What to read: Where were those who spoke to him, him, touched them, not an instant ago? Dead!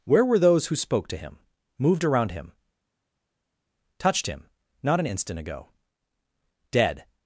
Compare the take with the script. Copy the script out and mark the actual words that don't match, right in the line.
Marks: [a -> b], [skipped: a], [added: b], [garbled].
Where were those who spoke to him, [added: moved around] him, touched [them, -> him] not an instant ago? Dead!